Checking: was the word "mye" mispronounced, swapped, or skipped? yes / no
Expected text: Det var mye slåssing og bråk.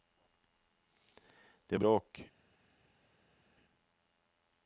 yes